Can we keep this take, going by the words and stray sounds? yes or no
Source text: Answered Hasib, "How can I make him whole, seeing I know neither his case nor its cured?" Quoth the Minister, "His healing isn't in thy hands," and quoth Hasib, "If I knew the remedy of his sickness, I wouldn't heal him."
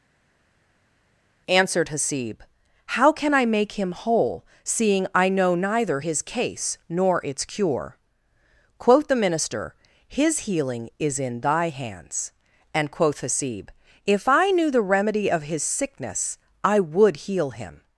no